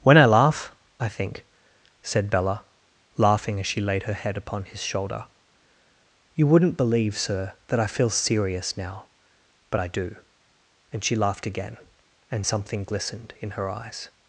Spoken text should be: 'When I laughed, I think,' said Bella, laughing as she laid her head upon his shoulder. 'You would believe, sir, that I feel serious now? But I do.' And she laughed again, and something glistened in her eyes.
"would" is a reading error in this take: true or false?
true